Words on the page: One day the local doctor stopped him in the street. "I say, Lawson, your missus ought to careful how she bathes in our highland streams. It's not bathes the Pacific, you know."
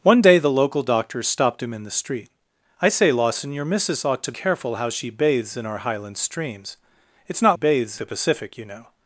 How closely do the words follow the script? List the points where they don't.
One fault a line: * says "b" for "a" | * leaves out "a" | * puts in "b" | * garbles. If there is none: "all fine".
all fine